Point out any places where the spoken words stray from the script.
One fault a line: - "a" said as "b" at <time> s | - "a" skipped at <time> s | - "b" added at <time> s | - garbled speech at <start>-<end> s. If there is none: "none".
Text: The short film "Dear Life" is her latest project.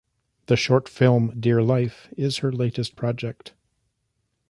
none